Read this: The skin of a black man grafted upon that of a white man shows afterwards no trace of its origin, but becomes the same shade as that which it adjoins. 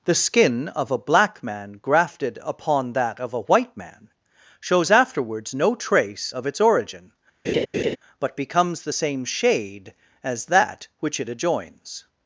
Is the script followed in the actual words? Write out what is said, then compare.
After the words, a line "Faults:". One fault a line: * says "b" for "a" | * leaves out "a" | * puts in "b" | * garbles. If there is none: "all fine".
The skin of a black man grafted upon that of a white man shows afterwards no trace of its origin, but becomes the same shade as that which it adjoins.
Faults:
all fine